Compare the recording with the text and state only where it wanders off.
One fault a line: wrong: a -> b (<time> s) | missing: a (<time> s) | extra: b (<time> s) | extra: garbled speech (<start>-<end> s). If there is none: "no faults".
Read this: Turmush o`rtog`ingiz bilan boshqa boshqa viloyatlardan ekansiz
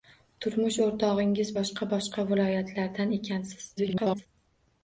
missing: bilan (1.5 s)
extra: garbled speech (3.8-4.3 s)